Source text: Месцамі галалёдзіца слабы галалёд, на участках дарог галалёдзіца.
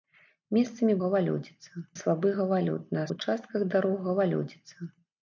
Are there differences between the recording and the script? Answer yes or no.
no